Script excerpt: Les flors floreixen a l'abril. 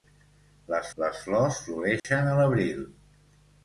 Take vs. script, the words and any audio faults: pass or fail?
fail